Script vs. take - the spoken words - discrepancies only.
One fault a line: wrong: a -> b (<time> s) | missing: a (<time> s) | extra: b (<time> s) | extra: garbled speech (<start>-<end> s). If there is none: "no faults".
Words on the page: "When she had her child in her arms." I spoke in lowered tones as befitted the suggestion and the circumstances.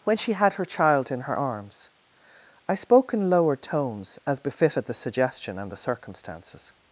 no faults